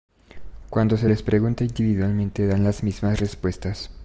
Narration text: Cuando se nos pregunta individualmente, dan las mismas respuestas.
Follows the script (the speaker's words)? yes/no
no